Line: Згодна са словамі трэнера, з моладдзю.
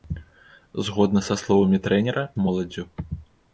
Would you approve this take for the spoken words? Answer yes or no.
yes